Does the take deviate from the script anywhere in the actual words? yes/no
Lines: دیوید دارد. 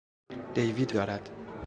no